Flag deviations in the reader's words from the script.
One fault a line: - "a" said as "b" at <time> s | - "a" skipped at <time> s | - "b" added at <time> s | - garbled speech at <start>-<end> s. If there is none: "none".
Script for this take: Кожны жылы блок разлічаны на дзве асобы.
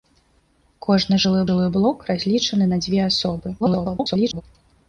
- "жылы" added at 1.5 s
- garbled speech at 3.6-4.4 s